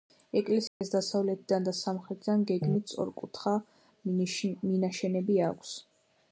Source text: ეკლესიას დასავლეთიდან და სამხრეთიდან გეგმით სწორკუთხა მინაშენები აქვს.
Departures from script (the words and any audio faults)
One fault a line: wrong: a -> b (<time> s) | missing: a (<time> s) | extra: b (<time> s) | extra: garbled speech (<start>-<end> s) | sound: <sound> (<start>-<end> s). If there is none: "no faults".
sound: dropout (0.7-0.8 s)